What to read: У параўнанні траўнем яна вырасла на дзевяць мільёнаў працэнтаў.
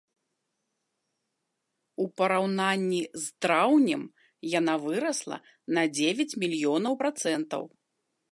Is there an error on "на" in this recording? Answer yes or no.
no